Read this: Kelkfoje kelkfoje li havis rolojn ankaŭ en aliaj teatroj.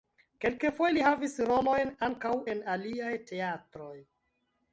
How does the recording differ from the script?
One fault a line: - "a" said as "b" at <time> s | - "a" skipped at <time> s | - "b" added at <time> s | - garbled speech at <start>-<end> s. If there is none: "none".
- "kelkfoje" skipped at 0.9 s